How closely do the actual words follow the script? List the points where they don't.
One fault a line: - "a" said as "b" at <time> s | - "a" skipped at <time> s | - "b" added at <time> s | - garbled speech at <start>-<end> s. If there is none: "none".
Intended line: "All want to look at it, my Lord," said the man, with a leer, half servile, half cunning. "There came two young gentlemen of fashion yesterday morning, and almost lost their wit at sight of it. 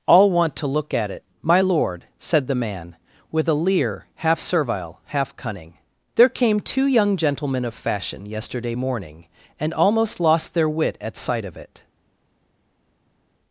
none